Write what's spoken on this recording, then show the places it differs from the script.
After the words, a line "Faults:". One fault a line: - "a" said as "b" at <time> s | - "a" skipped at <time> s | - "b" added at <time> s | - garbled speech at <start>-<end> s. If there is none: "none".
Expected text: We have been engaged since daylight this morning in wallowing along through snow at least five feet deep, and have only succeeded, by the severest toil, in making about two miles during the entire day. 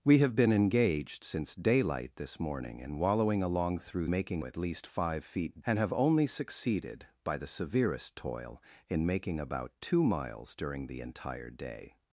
We have been engaged since daylight this morning in wallowing along through making at least five feet and have only succeeded, by the severest toil, in making about two miles during the entire day.
Faults:
- "snow" said as "making" at 4.1 s
- "deep" skipped at 5.6 s